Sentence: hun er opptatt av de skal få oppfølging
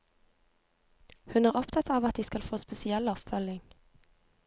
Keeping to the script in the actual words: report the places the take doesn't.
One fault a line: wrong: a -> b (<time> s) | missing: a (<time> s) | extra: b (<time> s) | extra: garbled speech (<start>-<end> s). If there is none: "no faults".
extra: at (2.1 s)
extra: spesiell (2.6 s)